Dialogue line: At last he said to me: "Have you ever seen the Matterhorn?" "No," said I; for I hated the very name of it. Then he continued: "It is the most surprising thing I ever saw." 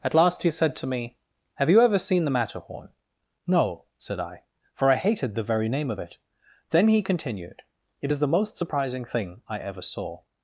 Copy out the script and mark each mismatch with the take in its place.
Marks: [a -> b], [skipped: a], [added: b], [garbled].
At last he said to me: "Have you ever seen the Matterhorn?" "No," said I; for I hated the very name of it. Then he continued: "It is the most surprising thing I ever saw."